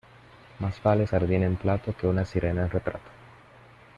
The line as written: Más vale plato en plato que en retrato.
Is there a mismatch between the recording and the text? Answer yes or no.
yes